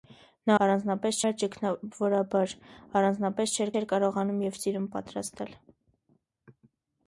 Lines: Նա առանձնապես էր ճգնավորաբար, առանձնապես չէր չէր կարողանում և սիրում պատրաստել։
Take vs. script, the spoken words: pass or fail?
pass